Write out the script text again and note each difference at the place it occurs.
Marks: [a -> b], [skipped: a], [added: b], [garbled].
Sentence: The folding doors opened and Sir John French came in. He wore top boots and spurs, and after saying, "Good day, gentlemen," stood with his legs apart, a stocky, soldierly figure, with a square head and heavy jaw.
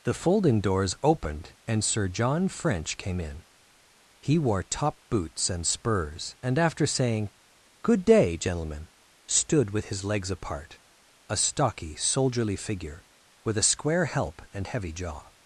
The folding doors opened and Sir John French came in. He wore top boots and spurs, and after saying, "Good day, gentlemen," stood with his legs apart, a stocky, soldierly figure, with a square [head -> help] and heavy jaw.